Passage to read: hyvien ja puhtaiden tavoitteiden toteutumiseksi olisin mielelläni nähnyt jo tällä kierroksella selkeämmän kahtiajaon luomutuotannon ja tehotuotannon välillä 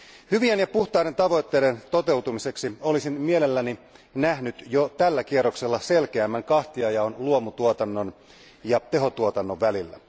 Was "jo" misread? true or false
false